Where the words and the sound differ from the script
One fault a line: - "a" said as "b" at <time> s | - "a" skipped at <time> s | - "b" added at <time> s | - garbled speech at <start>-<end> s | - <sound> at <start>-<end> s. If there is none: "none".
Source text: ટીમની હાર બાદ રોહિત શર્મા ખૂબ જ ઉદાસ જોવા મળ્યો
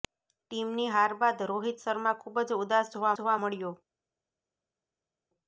- "જોવા" added at 3.2 s